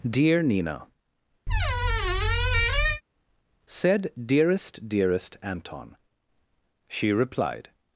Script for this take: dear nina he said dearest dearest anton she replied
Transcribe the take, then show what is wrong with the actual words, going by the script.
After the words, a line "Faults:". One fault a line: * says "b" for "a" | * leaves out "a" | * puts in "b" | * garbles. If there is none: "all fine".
dear nina said dearest dearest anton she replied
Faults:
* leaves out "he"